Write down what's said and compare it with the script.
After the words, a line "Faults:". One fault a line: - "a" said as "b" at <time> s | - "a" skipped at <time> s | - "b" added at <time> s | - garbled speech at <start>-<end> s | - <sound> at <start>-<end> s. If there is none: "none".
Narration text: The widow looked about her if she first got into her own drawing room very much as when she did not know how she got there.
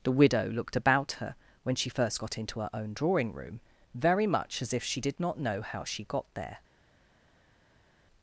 The widow looked about her when she first got into her own drawing room very much as if she did not know how she got there.
Faults:
- "if" said as "when" at 1.6 s
- "when" said as "if" at 4.7 s